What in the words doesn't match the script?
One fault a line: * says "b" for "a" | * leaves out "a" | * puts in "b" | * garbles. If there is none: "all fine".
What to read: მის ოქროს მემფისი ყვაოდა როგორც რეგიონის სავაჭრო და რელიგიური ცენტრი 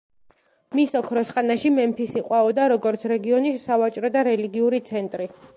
* puts in "ხანაში"